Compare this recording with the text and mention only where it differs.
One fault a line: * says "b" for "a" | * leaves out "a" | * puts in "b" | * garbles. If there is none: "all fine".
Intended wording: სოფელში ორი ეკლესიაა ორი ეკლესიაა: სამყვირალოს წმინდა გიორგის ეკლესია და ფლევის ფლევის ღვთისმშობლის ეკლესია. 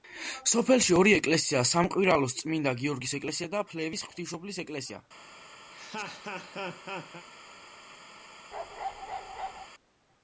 * leaves out "ორი ეკლესიაა"
* leaves out "ფლევის"